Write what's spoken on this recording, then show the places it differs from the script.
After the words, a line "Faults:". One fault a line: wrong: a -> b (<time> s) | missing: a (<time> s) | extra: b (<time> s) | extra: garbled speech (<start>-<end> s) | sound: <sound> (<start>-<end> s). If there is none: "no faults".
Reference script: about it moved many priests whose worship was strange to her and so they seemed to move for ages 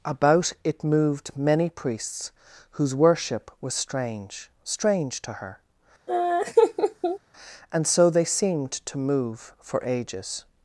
about it moved many priests whose worship was strange strange to her and so they seemed to move for ages
Faults:
extra: strange (4.6 s)
sound: laugh (6.1-7.2 s)